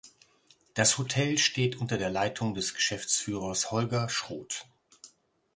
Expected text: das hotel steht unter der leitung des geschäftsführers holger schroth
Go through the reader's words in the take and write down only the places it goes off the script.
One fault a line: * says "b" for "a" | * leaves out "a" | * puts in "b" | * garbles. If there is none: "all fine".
all fine